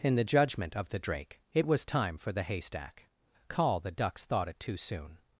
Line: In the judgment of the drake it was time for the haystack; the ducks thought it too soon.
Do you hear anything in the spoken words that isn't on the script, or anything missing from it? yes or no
yes